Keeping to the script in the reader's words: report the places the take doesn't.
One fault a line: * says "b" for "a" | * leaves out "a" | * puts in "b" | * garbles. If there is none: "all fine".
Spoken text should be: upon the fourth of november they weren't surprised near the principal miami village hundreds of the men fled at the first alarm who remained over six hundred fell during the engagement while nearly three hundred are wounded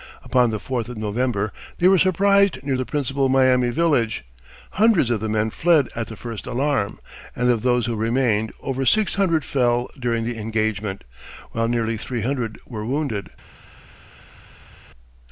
* says "were" for "weren't"
* puts in "and of those"
* says "were" for "are"